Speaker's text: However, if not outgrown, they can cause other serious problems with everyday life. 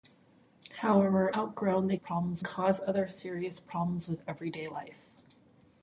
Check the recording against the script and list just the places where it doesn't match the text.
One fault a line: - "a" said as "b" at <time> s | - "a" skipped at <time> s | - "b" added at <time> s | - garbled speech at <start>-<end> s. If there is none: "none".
- "if not" skipped at 1.3 s
- "can" said as "problems" at 1.9 s